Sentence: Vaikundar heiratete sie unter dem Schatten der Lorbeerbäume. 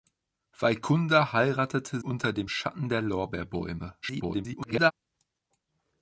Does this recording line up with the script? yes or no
no